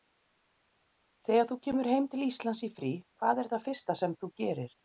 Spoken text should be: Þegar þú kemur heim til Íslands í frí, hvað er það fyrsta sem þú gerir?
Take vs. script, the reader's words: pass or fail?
pass